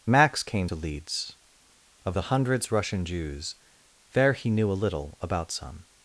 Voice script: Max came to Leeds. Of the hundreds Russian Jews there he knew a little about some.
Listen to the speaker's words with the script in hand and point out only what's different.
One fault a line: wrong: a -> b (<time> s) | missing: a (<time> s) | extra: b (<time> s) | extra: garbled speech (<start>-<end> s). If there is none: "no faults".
no faults